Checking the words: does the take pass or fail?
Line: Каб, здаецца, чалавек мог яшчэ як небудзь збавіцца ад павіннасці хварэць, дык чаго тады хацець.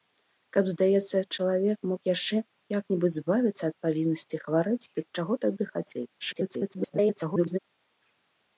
fail